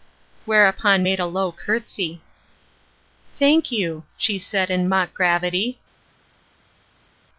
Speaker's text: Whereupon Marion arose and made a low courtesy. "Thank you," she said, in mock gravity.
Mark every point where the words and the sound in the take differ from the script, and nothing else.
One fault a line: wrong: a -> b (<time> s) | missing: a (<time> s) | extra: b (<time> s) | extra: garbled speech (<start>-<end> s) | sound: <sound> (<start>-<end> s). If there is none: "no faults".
missing: Marion arose and (1.1 s)